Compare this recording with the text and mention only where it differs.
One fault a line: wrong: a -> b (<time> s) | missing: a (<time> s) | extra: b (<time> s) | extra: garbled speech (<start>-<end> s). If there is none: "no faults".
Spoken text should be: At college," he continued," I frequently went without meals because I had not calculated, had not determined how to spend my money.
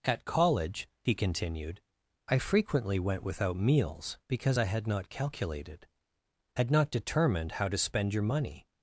wrong: my -> your (8.1 s)